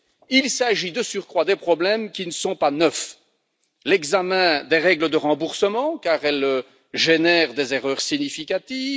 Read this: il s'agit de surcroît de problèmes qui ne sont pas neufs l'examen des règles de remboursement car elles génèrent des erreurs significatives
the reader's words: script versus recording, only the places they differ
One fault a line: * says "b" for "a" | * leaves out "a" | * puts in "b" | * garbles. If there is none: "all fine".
all fine